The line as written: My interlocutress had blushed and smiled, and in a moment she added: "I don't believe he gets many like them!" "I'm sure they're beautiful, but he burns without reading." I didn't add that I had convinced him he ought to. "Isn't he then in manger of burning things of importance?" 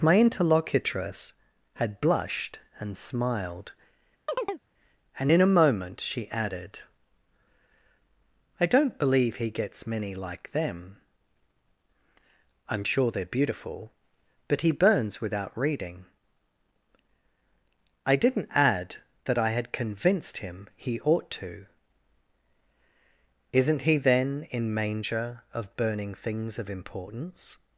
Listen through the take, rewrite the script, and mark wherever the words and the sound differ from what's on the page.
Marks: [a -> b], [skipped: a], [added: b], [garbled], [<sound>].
My interlocutress had blushed and smiled, [chirp] and in a moment she added: "I don't believe he gets many like them!" "I'm sure they're beautiful, but he burns without reading." I didn't add that I had convinced him he ought to. "Isn't he then in manger of burning things of importance?"